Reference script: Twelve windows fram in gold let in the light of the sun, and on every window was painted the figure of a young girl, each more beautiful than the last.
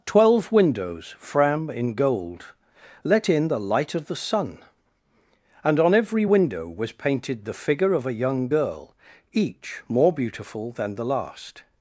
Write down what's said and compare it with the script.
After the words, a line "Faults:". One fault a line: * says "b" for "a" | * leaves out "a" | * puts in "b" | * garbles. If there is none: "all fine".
Twelve windows fram in gold let in the light of the sun, and on every window was painted the figure of a young girl, each more beautiful than the last.
Faults:
all fine